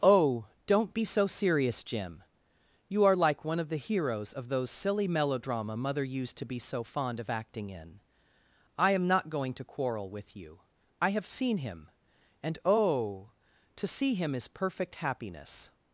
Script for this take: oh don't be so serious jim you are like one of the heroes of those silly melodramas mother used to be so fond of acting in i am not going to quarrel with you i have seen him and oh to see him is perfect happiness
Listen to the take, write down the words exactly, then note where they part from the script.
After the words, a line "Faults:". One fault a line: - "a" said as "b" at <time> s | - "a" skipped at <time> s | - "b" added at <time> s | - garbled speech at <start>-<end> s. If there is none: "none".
oh don't be so serious jim you are like one of the heroes of those silly melodrama mother used to be so fond of acting in i am not going to quarrel with you i have seen him and oh to see him is perfect happiness
Faults:
- "melodramas" said as "melodrama" at 5.1 s